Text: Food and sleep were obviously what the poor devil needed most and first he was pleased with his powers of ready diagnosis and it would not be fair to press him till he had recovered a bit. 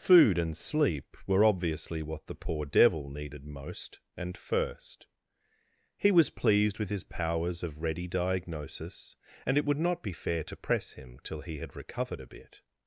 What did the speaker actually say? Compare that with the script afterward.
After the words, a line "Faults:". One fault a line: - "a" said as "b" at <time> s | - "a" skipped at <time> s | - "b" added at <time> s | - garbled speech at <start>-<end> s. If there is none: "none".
Food and sleep were obviously what the poor devil needed most and first he was pleased with his powers of ready diagnosis and it would not be fair to press him till he had recovered a bit.
Faults:
none